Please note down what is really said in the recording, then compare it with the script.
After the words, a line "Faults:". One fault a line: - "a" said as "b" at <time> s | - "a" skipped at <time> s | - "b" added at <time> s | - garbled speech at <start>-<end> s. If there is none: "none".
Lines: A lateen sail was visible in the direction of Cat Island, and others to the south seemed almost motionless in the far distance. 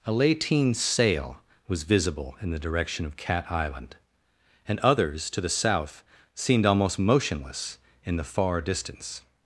A lateen sail was visible in the direction of Cat Island, and others to the south seemed almost motionless in the far distance.
Faults:
none